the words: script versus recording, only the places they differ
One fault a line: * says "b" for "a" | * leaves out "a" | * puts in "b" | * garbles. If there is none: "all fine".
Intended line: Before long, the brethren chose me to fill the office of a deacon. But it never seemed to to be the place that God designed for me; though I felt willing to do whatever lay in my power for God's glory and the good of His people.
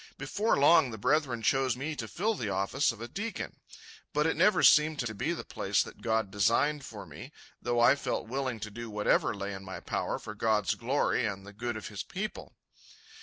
all fine